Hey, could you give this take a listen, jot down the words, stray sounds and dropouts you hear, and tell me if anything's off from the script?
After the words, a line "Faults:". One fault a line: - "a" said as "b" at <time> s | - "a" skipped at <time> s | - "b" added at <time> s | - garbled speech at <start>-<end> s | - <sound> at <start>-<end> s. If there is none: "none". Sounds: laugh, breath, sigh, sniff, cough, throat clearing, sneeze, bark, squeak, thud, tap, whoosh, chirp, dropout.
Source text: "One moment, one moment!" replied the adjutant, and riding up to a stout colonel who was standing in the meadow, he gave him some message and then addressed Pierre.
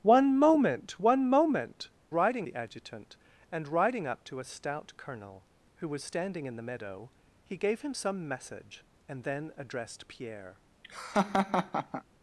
"One moment, one moment!" riding the adjutant, and riding up to a stout colonel who was standing in the meadow, he gave him some message and then addressed Pierre.
Faults:
- "replied" said as "riding" at 2.1 s
- laugh at 10.8-12.0 s